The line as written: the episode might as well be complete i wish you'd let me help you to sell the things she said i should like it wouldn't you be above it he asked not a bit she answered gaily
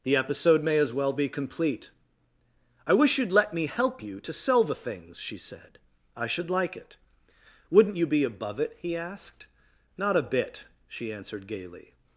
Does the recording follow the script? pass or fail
fail